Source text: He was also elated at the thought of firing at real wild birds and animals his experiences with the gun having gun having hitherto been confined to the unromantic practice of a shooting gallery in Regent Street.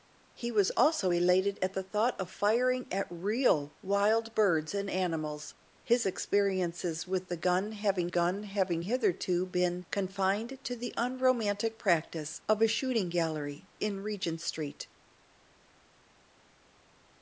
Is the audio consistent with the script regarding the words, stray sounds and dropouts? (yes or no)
yes